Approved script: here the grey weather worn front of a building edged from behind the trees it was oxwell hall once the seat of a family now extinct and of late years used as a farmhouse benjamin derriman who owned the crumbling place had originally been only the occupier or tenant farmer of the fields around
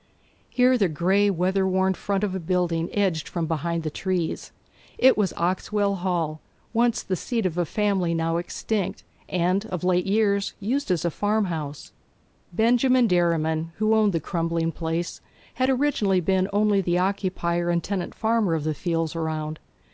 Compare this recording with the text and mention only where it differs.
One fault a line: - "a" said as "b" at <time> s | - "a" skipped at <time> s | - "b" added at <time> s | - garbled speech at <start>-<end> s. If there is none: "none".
- "or" said as "and" at 17.7 s